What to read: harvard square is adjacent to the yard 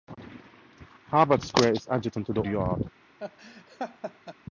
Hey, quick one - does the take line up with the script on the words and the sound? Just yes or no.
no